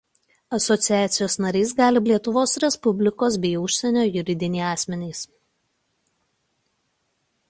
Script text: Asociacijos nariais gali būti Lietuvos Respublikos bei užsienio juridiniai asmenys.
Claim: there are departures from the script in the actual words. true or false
true